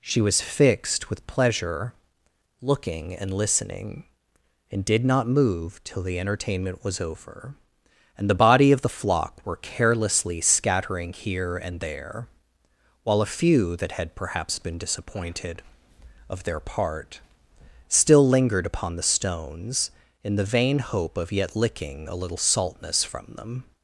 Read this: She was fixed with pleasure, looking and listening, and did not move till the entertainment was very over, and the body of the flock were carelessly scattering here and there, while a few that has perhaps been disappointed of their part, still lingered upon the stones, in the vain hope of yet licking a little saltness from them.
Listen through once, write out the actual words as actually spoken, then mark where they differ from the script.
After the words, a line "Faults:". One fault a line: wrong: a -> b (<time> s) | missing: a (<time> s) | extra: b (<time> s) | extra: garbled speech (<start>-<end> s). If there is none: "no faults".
She was fixed with pleasure, looking and listening, and did not move till the entertainment was over, and the body of the flock were carelessly scattering here and there, while a few that had perhaps been disappointed of their part, still lingered upon the stones, in the vain hope of yet licking a little saltness from them.
Faults:
missing: very (7.0 s)
wrong: has -> had (13.9 s)